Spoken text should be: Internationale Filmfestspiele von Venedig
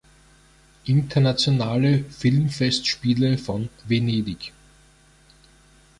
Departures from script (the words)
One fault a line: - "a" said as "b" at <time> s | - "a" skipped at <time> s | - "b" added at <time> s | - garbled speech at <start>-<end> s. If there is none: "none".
none